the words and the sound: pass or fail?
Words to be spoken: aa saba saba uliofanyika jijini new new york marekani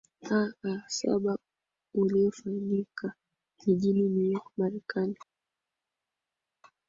fail